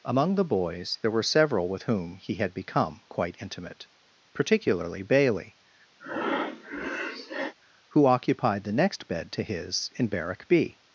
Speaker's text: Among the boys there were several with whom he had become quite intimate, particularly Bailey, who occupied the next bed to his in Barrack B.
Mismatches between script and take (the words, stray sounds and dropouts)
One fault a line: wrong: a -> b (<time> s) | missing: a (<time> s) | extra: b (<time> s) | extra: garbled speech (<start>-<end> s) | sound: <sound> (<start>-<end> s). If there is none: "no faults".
sound: breath (6.0-7.5 s)